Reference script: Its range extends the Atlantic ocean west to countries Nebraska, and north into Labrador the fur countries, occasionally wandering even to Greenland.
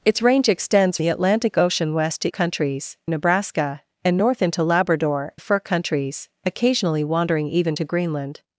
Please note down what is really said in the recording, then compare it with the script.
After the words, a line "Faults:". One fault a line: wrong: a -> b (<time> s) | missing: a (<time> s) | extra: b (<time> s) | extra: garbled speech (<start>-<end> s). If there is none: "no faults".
Its range extends the Atlantic ocean west to countries Nebraska, and north into Labrador the fur countries, occasionally wandering even to Greenland.
Faults:
no faults